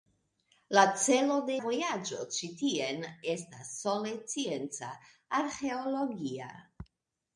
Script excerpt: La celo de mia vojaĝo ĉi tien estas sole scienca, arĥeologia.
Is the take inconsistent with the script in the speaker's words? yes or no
yes